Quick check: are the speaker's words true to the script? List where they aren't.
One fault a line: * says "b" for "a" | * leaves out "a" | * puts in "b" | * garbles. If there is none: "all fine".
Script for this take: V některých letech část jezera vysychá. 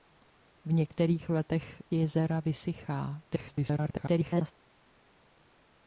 * leaves out "část"
* garbles